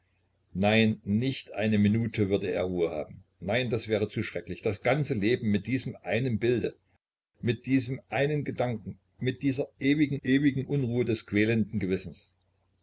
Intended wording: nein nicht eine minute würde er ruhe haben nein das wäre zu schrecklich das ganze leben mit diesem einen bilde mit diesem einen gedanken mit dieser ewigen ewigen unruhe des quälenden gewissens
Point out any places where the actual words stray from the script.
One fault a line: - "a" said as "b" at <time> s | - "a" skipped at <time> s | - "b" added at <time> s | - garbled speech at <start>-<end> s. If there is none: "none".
none